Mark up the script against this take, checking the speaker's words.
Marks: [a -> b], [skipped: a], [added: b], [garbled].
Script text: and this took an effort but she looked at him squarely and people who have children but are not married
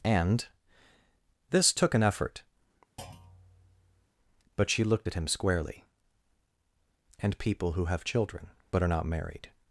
and this took an effort but she looked at him squarely and people who have children but are not married